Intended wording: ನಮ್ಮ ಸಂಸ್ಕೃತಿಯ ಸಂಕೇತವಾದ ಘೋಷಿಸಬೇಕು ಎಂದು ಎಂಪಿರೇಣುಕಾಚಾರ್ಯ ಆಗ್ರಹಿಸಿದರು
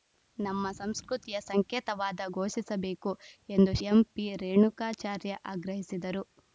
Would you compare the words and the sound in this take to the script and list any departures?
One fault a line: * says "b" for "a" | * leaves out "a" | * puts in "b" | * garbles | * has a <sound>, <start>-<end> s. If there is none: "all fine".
all fine